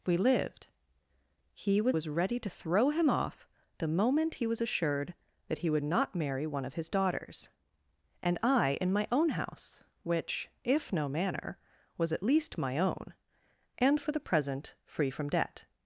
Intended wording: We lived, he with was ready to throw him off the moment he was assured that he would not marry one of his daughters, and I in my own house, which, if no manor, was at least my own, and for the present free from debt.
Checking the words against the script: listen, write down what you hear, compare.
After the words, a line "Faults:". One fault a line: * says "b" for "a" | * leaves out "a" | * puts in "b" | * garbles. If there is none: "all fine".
We lived, he with was ready to throw him off the moment he was assured that he would not marry one of his daughters, and I in my own house, which, if no manor, was at least my own, and for the present free from debt.
Faults:
all fine